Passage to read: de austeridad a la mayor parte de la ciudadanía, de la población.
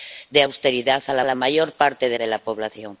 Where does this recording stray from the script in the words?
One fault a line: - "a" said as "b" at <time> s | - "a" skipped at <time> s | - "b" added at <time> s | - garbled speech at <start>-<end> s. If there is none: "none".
- "la" added at 1.2 s
- "la ciudadanía" skipped at 2.2 s